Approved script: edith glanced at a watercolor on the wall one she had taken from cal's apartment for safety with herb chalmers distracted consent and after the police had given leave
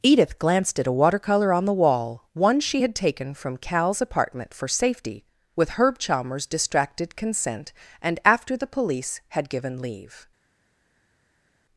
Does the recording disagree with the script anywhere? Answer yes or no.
no